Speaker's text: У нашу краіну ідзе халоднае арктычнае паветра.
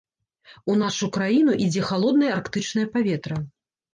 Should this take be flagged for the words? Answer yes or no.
no